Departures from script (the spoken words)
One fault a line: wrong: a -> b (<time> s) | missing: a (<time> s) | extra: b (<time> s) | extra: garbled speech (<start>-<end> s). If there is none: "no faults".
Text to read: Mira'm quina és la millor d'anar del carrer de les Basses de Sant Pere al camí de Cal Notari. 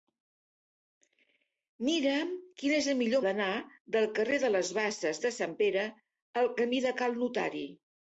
no faults